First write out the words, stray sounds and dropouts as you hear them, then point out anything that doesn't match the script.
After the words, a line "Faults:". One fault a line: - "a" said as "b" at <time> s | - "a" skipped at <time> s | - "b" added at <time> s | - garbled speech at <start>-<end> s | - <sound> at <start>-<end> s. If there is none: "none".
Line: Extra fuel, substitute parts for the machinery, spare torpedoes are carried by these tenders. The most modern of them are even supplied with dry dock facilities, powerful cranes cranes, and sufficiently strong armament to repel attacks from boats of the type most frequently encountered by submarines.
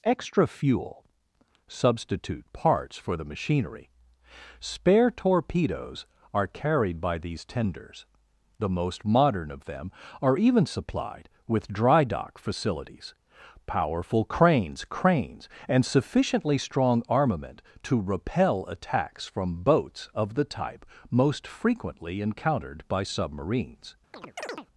Extra fuel, substitute parts for the machinery, spare torpedoes are carried by these tenders. The most modern of them are even supplied with dry dock facilities, powerful cranes cranes, and sufficiently strong armament to repel attacks from boats of the type most frequently encountered by submarines.
Faults:
- chirp at 24.1-24.7 s